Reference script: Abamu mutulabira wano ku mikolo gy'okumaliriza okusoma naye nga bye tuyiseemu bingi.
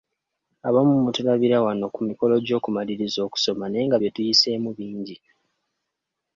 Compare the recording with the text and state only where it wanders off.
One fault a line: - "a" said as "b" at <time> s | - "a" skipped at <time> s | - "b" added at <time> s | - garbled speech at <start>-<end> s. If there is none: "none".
none